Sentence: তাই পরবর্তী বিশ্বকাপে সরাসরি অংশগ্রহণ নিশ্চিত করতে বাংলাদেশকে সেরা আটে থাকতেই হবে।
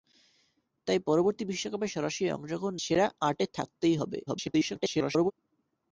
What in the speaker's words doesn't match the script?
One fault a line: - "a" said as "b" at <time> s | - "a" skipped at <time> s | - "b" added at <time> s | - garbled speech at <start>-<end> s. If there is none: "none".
- "নিশ্চিত করতে বাংলাদেশকে" skipped at 2.8 s
- garbled speech at 4.3-5.3 s